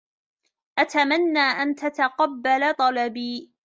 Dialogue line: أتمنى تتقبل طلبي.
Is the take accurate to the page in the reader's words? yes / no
no